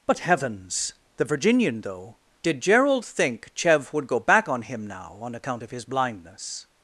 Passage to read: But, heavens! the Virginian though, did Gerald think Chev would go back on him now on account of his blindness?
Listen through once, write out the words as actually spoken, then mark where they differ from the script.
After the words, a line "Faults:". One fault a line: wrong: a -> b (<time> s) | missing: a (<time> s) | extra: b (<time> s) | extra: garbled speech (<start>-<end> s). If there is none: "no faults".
But, heavens! the Virginian though, did Gerald think Chev would go back on him now on account of his blindness?
Faults:
no faults